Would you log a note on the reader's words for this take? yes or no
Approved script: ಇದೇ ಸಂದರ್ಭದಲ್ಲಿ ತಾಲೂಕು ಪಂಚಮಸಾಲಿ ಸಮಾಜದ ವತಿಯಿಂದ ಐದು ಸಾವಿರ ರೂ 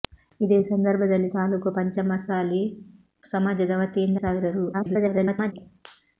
yes